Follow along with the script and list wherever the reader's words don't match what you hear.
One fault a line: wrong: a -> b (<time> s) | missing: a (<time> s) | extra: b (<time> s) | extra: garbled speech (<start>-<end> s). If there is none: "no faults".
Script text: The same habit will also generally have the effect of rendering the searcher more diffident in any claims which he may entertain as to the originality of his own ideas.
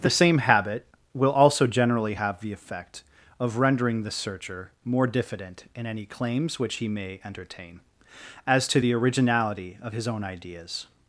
no faults